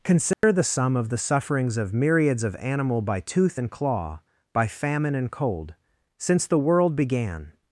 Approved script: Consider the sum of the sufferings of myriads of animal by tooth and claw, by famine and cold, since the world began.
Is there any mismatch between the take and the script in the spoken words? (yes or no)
no